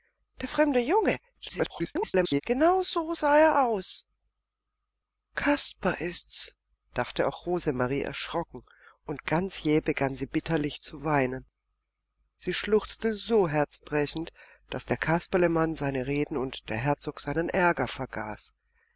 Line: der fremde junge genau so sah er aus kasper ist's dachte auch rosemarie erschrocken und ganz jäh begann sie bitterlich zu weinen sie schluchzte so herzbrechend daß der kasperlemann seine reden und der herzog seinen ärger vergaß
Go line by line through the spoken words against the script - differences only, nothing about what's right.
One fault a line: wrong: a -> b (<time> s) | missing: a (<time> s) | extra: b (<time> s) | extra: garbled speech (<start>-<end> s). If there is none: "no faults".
extra: garbled speech (1.3-2.4 s)